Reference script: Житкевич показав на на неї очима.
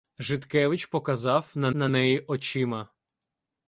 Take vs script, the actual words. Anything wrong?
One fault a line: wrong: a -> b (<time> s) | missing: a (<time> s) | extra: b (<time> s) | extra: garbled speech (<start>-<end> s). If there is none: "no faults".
no faults